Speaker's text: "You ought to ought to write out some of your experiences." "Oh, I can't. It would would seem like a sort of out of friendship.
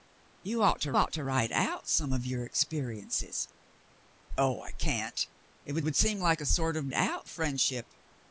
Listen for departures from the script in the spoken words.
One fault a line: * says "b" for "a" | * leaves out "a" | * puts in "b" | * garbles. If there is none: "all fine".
all fine